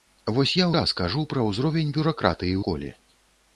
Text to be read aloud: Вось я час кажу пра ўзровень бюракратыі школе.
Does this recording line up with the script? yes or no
yes